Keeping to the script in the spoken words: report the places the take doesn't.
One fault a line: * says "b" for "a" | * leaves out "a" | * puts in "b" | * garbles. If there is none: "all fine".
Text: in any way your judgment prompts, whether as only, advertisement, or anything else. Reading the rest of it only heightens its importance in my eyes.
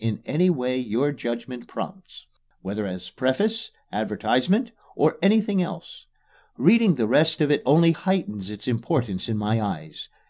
* says "preface" for "only"